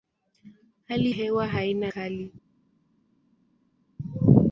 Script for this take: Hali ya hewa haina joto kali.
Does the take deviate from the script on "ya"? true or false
true